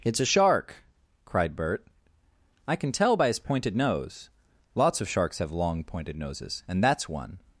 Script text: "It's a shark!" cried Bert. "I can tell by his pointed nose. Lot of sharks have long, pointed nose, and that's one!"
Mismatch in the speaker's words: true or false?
true